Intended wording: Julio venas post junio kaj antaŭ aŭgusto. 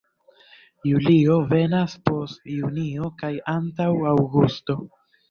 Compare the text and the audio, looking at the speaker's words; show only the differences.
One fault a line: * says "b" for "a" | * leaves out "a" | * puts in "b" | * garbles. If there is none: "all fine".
all fine